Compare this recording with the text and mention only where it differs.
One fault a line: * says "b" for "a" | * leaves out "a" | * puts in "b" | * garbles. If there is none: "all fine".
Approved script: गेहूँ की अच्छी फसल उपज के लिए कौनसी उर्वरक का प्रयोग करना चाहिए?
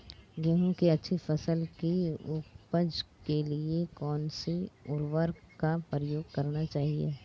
* puts in "की"